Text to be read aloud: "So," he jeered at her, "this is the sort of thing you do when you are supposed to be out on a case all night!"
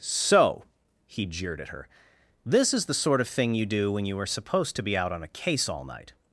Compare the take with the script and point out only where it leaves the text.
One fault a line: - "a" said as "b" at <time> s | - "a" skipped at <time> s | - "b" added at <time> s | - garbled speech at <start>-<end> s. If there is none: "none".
none